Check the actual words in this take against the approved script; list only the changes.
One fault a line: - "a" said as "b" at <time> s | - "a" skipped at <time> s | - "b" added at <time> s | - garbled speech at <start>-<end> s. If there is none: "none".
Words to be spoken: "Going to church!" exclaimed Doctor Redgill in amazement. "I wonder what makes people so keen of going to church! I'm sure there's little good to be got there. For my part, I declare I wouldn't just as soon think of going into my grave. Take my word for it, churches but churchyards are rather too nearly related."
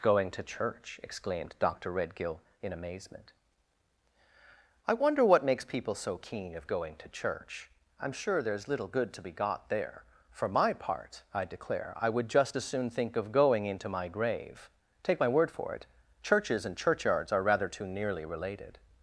- "wouldn't" said as "would" at 12.1 s
- "but" said as "and" at 16.6 s